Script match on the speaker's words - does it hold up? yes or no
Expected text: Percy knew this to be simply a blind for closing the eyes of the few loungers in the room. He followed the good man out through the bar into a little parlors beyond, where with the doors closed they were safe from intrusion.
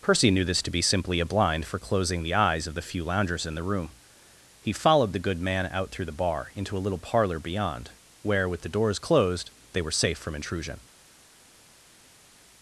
no